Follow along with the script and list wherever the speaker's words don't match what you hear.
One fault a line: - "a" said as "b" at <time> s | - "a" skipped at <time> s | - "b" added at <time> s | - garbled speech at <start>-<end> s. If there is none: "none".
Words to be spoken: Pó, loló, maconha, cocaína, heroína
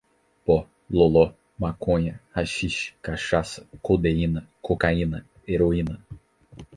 - "haxixe cachaça codeína" added at 2.3 s